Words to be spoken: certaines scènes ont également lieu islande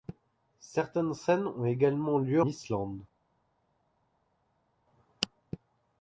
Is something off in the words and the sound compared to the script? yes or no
no